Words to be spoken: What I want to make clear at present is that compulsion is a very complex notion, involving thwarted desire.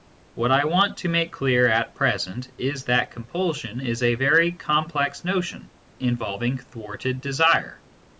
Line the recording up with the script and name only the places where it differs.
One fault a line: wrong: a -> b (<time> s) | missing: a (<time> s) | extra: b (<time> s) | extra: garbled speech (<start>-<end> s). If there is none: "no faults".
no faults